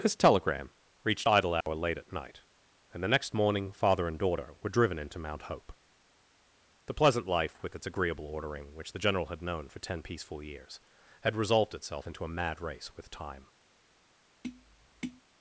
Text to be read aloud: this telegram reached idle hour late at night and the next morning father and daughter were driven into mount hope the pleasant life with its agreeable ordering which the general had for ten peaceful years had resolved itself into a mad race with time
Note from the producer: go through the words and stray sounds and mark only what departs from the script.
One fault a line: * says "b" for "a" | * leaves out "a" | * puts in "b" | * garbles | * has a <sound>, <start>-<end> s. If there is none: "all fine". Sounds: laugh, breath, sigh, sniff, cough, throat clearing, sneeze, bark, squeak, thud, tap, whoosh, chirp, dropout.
* has a dropout, 1.6-1.7 s
* puts in "known"
* has a tap, 14.4-15.2 s